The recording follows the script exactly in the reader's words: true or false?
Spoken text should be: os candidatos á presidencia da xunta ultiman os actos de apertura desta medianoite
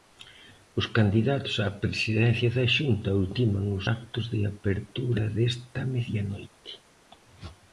true